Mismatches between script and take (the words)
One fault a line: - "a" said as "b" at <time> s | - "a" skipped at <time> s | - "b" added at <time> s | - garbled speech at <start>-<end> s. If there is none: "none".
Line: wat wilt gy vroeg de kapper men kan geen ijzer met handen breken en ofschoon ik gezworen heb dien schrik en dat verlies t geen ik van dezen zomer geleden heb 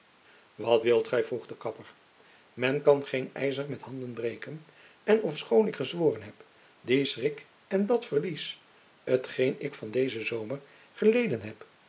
none